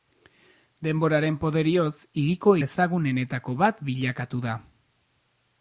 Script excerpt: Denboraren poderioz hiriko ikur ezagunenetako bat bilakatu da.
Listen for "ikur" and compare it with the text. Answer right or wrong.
wrong